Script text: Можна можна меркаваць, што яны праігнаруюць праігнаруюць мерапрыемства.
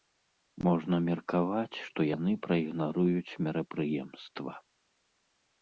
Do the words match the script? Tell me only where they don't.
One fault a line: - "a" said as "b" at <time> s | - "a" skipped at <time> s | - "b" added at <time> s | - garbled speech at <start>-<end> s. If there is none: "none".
- "можна" skipped at 0.9 s
- "праігнаруюць" skipped at 3.4 s